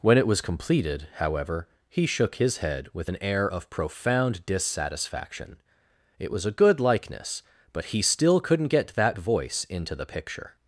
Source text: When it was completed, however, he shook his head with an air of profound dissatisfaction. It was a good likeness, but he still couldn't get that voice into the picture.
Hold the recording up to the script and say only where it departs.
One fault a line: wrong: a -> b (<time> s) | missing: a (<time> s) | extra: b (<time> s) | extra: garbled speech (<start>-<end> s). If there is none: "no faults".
no faults